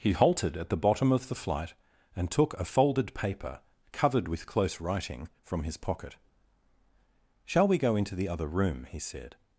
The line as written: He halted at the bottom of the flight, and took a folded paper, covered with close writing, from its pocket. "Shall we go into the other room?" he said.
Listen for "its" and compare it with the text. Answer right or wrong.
wrong